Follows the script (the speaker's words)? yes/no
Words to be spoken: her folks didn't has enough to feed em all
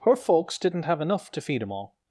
no